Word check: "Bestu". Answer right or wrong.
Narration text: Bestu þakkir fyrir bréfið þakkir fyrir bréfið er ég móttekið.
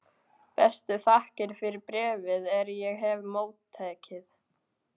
right